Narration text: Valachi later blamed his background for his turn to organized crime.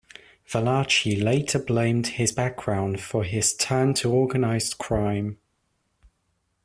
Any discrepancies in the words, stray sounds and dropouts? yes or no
no